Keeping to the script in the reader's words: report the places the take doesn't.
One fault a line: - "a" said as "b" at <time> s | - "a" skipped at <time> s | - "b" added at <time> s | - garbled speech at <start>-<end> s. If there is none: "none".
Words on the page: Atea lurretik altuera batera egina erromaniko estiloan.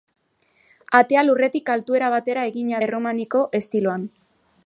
none